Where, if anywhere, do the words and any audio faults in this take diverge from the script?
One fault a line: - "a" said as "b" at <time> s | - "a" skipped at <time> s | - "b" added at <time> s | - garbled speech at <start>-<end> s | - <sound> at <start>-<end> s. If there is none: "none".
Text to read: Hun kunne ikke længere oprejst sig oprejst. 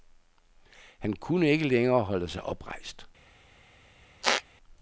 - "Hun" said as "Han" at 1.0 s
- "oprejst" said as "holde" at 2.0 s
- squeak at 4.2-4.4 s